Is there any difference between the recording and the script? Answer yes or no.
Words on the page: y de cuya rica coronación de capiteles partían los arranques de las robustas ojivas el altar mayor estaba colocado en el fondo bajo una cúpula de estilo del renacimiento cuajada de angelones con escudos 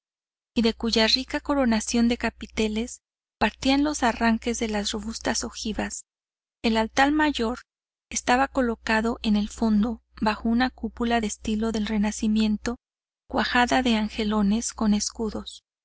no